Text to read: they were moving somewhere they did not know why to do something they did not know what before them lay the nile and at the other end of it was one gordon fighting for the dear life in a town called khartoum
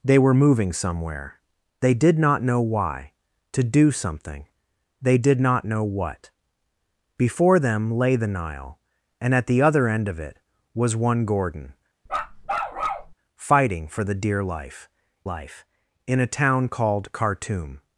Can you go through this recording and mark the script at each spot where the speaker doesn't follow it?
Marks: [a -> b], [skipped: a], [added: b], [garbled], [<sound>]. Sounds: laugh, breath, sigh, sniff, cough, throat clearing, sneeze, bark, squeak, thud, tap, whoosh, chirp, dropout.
they were moving somewhere they did not know why to do something they did not know what before them lay the nile and at the other end of it was one gordon [bark] fighting for the dear life [added: life] in a town called khartoum